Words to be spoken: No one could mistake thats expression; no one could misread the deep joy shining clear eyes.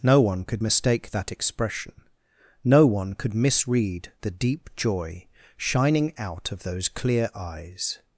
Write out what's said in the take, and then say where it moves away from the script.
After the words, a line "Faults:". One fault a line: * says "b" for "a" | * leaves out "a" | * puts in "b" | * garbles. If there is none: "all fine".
No one could mistake that expression; no one could misread the deep joy shining out of those clear eyes.
Faults:
* says "that" for "thats"
* puts in "out of those"